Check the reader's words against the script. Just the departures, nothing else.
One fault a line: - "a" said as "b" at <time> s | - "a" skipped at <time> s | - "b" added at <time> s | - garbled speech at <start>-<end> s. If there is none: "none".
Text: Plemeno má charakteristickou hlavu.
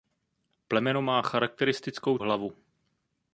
none